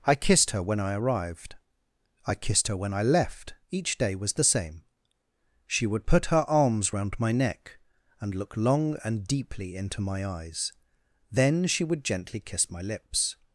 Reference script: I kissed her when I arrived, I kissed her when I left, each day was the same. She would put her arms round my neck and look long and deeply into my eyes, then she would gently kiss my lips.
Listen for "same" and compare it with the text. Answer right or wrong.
right